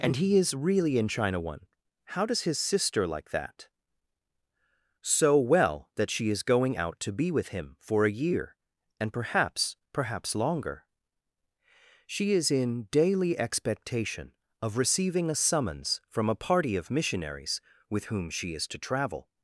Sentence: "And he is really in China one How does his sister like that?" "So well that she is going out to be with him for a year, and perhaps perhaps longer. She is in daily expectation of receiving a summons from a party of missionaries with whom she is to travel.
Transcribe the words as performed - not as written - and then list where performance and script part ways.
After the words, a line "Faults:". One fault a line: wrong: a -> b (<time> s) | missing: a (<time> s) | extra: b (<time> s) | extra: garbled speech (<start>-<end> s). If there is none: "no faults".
"And he is really in China one How does his sister like that?" "So well that she is going out to be with him for a year, and perhaps perhaps longer. She is in daily expectation of receiving a summons from a party of missionaries with whom she is to travel.
Faults:
no faults